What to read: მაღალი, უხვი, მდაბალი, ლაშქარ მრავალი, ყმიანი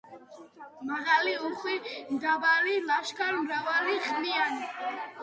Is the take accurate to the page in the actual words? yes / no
yes